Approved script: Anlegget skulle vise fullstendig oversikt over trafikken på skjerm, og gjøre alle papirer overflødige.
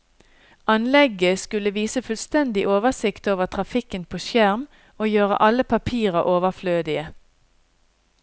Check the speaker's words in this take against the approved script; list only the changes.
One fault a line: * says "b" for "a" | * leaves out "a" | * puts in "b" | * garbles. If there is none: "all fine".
all fine